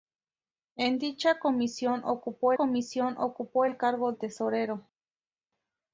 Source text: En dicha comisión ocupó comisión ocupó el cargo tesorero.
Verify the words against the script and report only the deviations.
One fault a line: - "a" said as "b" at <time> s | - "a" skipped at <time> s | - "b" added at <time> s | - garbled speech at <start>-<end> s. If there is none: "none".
none